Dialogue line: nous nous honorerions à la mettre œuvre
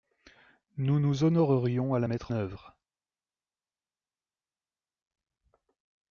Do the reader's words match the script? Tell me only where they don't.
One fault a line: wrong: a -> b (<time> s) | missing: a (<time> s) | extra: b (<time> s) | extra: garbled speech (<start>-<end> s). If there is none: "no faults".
no faults